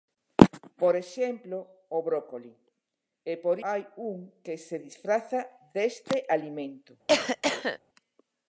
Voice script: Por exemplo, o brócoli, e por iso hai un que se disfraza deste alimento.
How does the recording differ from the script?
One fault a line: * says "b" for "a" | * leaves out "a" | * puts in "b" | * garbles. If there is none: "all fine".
* leaves out "iso"